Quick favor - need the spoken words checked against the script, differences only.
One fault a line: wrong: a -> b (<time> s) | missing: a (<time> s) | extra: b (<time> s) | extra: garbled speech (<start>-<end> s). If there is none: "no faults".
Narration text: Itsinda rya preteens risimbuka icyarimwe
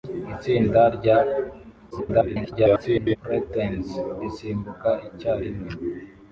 extra: garbled speech (1.9-3.2 s)